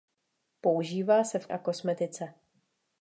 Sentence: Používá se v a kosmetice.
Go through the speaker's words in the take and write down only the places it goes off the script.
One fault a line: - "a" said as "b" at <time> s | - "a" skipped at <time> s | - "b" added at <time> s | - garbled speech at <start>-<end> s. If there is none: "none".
none